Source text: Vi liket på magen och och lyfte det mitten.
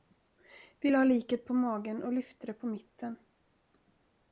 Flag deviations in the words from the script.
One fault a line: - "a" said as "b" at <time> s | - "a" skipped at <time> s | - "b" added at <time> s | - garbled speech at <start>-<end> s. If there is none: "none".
- "lade" added at 0.9 s
- "och" skipped at 2.1 s
- "på" added at 2.5 s